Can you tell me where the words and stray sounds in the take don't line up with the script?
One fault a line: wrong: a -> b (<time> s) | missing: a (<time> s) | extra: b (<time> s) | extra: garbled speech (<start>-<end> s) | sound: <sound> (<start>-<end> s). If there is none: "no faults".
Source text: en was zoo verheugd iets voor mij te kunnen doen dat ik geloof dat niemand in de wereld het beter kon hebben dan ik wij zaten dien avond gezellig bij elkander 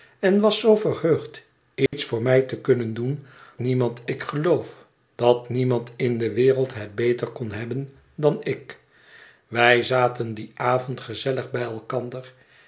sound: dropout (1.9-1.9 s)
wrong: dat -> niemand (3.6 s)